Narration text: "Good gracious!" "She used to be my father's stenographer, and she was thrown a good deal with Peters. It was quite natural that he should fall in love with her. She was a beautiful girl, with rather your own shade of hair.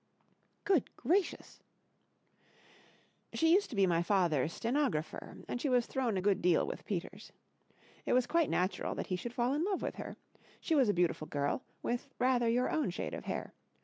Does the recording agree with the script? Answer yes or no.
yes